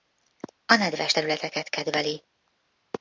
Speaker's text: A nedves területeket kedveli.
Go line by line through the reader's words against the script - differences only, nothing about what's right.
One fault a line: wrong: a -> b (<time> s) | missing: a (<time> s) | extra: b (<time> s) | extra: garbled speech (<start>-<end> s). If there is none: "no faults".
no faults